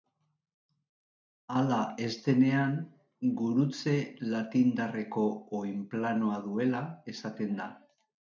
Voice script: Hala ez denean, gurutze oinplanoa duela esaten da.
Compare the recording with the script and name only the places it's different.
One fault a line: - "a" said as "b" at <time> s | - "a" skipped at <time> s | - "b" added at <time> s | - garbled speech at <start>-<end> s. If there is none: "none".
- "latindarreko" added at 4.3 s